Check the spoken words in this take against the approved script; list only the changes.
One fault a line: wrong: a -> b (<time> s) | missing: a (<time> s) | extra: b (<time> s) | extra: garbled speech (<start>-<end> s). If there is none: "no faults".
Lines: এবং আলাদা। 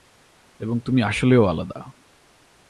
extra: তুমি আসলেও (0.8 s)